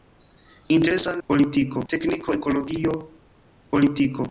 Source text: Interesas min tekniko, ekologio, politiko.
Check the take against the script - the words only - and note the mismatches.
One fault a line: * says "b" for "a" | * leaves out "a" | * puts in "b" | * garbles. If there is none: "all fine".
* says "politiko" for "min"